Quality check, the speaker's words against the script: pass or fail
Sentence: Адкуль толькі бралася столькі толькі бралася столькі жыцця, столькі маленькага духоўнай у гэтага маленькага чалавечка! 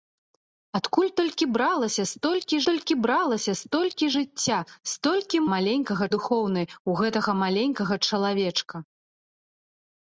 pass